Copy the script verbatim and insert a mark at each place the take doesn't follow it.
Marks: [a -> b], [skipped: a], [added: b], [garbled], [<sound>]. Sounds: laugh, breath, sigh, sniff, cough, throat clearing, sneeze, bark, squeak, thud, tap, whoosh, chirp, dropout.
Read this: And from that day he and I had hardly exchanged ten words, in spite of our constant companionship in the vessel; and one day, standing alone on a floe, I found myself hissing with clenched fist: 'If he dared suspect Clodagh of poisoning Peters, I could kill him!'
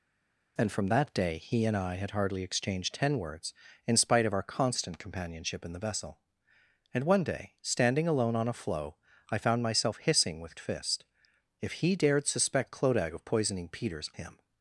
And from that day he and I had hardly exchanged ten words, in spite of our constant companionship in the vessel; and one day, standing alone on a floe, I found myself hissing with [skipped: clenched] fist: 'If he dared suspect Clodagh of poisoning Peters, [skipped: I could kill] him!'